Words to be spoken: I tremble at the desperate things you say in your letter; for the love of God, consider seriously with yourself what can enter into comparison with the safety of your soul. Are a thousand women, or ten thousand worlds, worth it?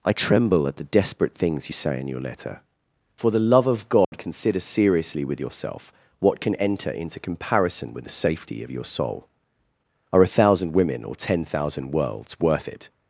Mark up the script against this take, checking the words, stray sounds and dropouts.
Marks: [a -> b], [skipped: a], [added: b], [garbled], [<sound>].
I tremble at the desperate things you say in your letter; for the love of God, [dropout] consider seriously with yourself what can enter into comparison with the safety of your soul. Are a thousand women, or ten thousand worlds, worth it?